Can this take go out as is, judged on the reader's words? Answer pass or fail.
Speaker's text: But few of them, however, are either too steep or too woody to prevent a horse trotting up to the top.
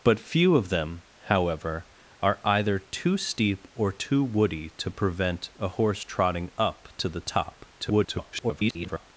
fail